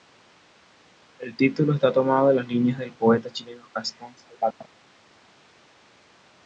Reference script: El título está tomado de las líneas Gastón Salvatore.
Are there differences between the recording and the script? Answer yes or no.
yes